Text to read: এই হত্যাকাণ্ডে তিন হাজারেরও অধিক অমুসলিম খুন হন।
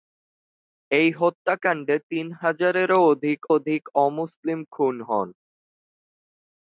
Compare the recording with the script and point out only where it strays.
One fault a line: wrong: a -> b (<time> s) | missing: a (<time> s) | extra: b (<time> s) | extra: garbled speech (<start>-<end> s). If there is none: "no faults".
extra: অধিক (3.6 s)